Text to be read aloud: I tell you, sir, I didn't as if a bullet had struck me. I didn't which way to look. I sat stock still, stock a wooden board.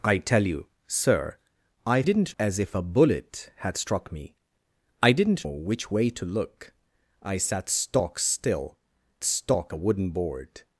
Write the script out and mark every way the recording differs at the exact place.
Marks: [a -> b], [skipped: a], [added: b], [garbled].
I tell you, sir, I didn't as if a bullet had struck me. I didn't which way to look. I sat stock still, stock a wooden board.